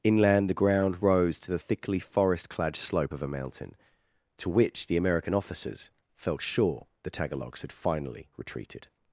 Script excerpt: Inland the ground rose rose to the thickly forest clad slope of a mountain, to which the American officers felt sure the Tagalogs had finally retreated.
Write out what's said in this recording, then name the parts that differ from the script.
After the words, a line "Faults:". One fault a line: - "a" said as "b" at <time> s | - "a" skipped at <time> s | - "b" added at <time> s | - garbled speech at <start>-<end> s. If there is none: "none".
Inland the ground rose to the thickly forest clad slope of a mountain, to which the American officers felt sure the Tagalogs had finally retreated.
Faults:
- "rose" skipped at 1.4 s